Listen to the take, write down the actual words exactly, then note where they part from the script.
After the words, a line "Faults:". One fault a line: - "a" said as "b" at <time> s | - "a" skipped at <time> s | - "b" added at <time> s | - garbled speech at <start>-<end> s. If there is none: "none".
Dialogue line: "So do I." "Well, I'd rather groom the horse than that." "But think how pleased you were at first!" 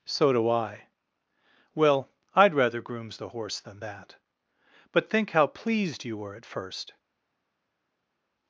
"So do I." "Well, I'd rather grooms the horse than that." "But think how pleased you were at first!"
Faults:
- "groom" said as "grooms" at 2.8 s